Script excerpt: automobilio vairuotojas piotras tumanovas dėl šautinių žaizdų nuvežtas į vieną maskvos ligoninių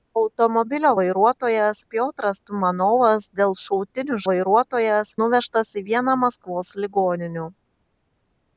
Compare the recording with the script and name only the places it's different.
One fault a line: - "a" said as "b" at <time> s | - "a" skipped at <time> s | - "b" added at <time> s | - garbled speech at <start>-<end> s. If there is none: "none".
- "žaizdų" said as "vairuotojas" at 4.3 s